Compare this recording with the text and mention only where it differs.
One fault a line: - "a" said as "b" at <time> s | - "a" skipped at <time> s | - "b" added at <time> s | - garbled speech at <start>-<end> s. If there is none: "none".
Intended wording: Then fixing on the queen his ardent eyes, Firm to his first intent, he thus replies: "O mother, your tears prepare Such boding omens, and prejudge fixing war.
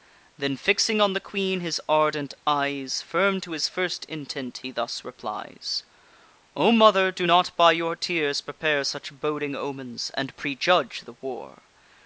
- "do not by" added at 7.1 s
- "fixing" said as "the" at 11.0 s